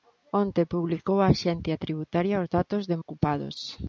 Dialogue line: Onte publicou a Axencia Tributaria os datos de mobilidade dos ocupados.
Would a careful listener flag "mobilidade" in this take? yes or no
yes